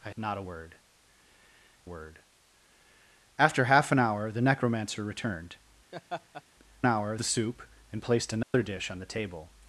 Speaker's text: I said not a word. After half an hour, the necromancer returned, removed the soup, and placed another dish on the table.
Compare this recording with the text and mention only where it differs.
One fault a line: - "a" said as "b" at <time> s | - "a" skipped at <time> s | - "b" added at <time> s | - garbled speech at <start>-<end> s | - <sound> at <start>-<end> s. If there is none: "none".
- "said" skipped at 0.1 s
- "word" added at 1.8 s
- laugh at 5.9-6.4 s
- "removed" said as "hour" at 6.8 s
- dropout at 8.4-8.5 s